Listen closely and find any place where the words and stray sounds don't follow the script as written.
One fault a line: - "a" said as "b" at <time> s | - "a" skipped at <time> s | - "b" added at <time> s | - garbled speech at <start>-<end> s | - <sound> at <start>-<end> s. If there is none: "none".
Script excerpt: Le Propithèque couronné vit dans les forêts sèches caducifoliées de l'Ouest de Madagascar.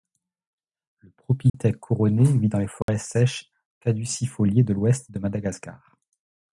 - dropout at 1.5-1.5 s
- dropout at 2.8-2.9 s